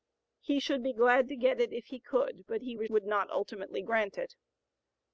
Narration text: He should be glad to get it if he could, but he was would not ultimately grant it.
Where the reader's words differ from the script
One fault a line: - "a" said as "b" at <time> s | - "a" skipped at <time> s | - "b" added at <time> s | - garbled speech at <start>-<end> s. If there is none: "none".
none